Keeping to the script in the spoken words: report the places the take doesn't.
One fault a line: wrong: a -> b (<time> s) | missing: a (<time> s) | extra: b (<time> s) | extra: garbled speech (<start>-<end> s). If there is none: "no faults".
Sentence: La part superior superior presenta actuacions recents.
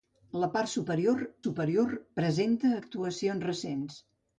no faults